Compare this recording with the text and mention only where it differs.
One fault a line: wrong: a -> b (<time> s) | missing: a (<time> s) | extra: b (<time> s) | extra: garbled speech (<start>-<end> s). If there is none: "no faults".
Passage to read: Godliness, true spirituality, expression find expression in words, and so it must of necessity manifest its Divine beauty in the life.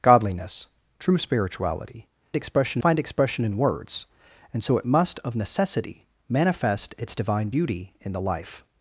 no faults